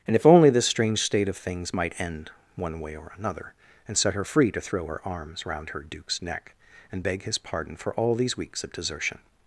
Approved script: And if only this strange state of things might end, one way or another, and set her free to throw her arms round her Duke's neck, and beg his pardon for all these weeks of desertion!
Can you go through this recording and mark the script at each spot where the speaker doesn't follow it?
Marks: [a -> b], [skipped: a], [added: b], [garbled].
And if only this strange state of things might end, one way or another, and set her free to throw her arms round her Duke's neck, and beg his pardon for all these weeks of desertion!